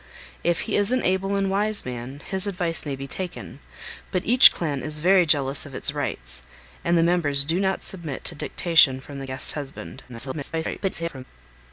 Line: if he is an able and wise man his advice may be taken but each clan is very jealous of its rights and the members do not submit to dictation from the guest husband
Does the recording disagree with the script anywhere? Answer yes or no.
yes